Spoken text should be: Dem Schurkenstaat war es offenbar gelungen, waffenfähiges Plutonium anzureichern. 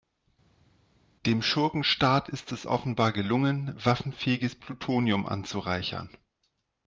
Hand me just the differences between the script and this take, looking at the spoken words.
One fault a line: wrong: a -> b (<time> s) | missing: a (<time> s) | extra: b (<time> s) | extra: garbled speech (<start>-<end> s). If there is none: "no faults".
wrong: war -> ist (2.3 s)